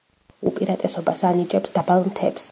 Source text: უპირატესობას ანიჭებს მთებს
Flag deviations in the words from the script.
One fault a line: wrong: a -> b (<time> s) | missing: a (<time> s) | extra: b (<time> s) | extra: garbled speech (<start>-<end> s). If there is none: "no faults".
extra: დაბალ (1.8 s)